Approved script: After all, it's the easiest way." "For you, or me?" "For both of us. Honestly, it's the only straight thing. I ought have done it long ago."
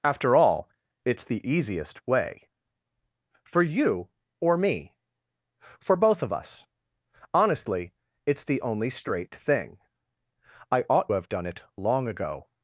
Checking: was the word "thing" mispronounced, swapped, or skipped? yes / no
no